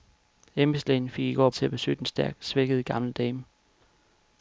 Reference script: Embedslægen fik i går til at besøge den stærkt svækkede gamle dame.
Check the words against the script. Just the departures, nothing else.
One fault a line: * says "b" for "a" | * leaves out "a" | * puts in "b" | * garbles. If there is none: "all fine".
all fine